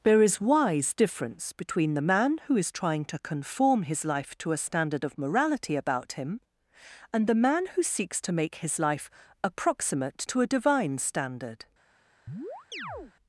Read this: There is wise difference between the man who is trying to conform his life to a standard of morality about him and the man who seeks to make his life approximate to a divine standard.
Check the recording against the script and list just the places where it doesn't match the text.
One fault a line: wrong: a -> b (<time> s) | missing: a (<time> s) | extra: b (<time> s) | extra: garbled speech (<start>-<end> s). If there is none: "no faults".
no faults